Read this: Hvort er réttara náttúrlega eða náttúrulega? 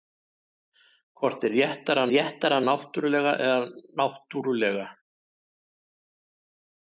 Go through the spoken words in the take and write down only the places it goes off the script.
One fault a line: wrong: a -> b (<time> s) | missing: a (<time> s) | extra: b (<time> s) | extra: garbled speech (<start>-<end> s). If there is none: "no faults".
extra: réttara (2.1 s)